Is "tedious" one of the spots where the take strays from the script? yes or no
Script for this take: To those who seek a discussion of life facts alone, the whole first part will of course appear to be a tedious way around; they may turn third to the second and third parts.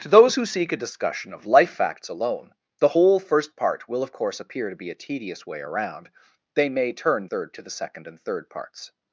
no